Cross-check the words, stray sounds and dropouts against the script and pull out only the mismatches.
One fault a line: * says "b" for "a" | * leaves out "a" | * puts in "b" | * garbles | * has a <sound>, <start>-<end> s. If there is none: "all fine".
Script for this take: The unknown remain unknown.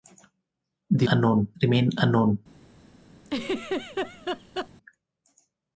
* has a laugh, 3.2-4.7 s